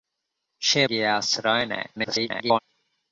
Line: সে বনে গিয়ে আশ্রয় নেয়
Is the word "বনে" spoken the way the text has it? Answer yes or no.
no